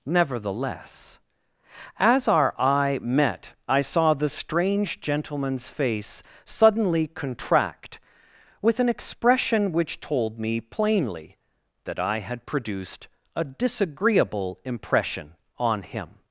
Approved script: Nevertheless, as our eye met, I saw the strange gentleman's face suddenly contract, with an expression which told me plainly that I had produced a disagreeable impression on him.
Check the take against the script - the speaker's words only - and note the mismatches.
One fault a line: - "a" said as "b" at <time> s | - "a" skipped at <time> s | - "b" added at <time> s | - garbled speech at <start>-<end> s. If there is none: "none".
none